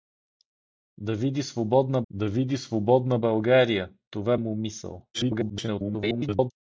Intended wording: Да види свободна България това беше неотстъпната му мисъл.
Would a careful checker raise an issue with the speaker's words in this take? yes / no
yes